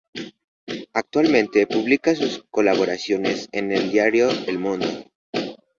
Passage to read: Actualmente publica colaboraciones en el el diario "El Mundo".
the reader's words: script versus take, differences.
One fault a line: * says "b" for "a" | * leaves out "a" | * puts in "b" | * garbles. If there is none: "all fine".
* puts in "sus"
* leaves out "el"